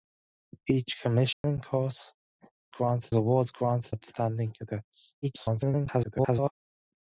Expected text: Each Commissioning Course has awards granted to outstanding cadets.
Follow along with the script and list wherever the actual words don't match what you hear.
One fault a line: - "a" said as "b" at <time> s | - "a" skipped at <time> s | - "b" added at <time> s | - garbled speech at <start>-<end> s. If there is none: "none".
- "has" said as "granted" at 2.7 s
- "to" skipped at 3.9 s
- garbled speech at 5.2-6.5 s